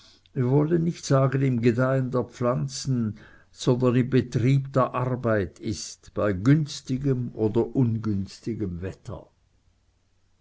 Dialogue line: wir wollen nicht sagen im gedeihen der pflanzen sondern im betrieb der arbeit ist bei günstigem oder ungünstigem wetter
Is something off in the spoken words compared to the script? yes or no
no